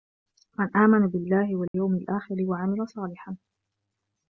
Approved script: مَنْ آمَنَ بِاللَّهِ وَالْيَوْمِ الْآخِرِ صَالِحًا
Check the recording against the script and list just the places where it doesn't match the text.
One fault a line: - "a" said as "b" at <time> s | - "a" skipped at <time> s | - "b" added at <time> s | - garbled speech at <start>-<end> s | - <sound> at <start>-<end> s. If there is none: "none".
- dropout at 1.7-1.7 s
- "وَعَمِلَ" added at 2.4 s